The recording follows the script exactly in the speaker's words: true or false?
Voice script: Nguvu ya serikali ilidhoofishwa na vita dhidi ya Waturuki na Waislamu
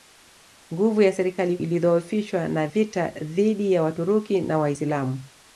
true